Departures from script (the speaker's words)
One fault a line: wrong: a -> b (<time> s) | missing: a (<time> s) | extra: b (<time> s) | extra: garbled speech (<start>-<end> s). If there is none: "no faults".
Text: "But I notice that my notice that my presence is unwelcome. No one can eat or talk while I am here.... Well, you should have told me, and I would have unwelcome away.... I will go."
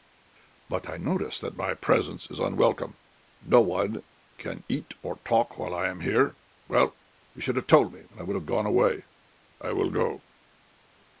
missing: notice that my (1.8 s)
wrong: unwelcome -> gone (8.5 s)